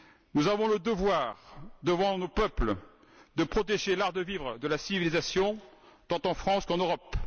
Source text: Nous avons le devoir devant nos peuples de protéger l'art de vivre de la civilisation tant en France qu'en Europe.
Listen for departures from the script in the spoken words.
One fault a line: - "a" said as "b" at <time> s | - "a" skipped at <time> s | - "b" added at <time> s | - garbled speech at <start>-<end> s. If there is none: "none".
none